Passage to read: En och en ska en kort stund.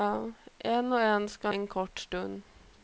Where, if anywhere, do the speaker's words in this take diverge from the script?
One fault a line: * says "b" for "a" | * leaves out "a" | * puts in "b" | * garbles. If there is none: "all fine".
all fine